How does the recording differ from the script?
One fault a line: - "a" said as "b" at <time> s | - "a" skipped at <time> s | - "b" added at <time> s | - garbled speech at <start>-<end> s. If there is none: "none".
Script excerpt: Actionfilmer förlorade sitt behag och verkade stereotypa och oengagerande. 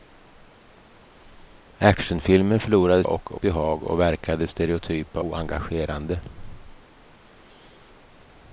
- "sitt" said as "och" at 3.0 s
- "och" skipped at 5.2 s